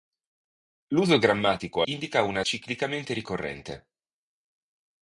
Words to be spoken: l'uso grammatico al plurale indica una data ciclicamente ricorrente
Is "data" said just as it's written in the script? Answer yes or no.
no